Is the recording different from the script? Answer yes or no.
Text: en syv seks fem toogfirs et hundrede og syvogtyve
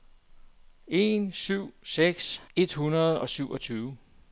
yes